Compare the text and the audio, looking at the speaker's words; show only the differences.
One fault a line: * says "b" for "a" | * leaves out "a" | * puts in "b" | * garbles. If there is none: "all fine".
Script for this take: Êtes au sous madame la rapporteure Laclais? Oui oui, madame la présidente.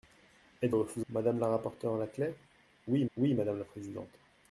all fine